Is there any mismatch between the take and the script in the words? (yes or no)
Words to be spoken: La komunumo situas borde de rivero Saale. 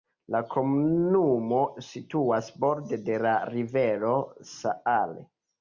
yes